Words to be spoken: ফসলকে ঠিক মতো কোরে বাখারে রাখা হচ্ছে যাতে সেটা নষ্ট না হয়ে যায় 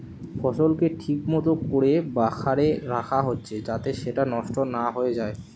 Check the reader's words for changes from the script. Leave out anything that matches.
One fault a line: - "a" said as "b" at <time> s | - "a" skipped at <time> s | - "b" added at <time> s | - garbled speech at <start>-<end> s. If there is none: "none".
none